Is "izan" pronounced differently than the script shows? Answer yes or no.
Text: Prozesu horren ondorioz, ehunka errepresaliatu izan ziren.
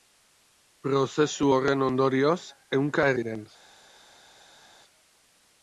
yes